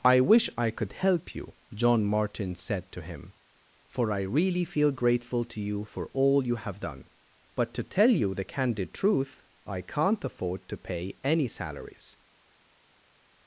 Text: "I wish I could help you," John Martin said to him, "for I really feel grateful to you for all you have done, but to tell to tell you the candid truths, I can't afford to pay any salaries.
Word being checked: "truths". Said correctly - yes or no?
no